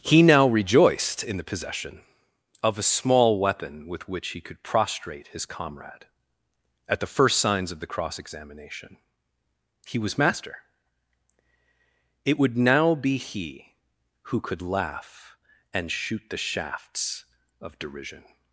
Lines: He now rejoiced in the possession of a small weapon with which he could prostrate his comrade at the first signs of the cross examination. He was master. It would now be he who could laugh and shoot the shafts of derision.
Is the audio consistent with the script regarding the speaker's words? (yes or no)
yes